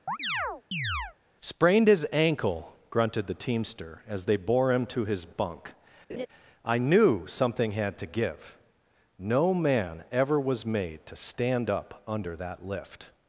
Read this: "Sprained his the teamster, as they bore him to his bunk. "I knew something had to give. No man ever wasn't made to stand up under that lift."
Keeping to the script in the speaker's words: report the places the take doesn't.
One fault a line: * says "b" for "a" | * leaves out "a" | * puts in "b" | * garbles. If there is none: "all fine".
* puts in "ankle grunted"
* says "was" for "wasn't"